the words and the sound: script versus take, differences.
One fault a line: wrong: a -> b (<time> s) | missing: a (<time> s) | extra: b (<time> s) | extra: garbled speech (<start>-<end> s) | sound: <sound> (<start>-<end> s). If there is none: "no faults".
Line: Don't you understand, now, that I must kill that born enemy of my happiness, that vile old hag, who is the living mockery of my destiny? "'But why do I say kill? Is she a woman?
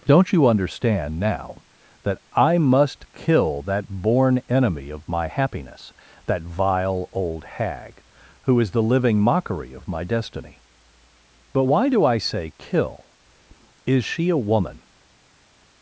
no faults